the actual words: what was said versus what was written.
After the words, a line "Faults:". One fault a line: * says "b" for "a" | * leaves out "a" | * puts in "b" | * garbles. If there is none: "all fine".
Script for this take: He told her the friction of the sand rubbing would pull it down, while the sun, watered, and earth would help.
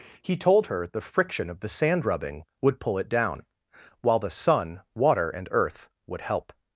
He told her the friction of the sand rubbing would pull it down, while the sun, water, and earth would help.
Faults:
* says "water" for "watered"